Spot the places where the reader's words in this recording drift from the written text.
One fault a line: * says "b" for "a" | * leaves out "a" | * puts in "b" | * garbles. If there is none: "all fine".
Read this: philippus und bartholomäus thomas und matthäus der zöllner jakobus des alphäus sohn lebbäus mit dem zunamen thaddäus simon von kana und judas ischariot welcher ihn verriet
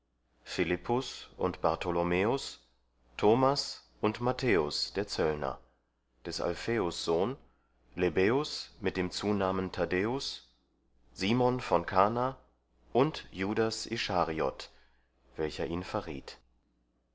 * leaves out "jakobus"